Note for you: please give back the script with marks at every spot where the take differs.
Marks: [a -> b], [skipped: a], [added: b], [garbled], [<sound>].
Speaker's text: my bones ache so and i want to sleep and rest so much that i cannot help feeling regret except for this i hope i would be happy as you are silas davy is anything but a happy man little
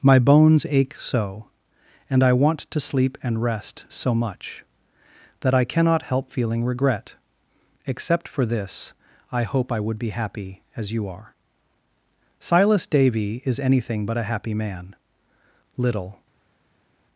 my bones ache so and i want to sleep and rest so much that i cannot help feeling regret except for this i hope i would be happy as you are silas davy is anything but a happy man little